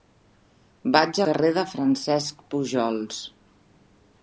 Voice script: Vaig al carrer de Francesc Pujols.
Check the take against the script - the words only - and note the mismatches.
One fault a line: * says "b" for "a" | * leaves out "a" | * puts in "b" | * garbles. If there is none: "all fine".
* leaves out "al"